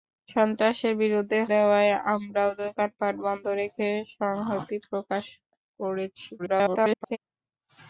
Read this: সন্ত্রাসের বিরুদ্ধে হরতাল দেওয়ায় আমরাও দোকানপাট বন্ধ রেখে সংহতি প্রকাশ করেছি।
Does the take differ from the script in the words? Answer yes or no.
yes